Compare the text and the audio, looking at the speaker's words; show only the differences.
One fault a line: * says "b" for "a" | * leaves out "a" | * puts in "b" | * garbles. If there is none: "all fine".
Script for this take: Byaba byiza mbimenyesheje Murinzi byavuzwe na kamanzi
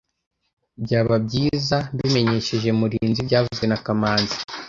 all fine